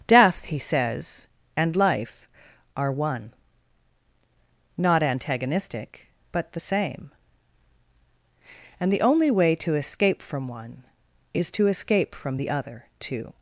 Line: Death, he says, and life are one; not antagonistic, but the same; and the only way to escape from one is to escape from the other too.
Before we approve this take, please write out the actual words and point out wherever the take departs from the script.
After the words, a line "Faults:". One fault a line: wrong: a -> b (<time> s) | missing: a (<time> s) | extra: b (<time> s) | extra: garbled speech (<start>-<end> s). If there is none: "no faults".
Death, he says, and life are one; not antagonistic, but the same; and the only way to escape from one is to escape from the other too.
Faults:
no faults